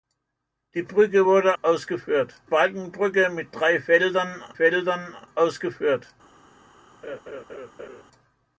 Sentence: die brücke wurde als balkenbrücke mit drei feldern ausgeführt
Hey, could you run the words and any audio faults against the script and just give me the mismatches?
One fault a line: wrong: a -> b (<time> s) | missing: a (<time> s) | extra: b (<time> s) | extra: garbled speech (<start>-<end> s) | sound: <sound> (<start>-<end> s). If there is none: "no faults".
wrong: als -> ausgeführt (1.6 s)
extra: feldern (4.5 s)
sound: laugh (7.0-8.0 s)